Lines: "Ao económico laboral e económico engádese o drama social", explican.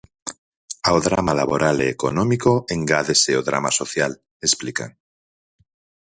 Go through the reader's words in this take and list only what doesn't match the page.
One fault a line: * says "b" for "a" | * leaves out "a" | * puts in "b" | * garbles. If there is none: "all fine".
* says "drama" for "económico"